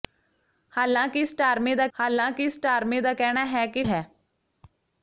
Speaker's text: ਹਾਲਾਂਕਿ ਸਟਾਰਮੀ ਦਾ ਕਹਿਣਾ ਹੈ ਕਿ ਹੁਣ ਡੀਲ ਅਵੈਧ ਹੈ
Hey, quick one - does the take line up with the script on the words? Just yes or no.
no